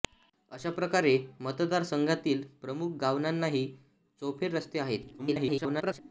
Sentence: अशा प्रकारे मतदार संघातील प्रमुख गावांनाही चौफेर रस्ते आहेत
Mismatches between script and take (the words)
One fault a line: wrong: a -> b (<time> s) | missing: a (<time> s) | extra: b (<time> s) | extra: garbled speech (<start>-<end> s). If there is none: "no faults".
extra: garbled speech (5.2-6.0 s)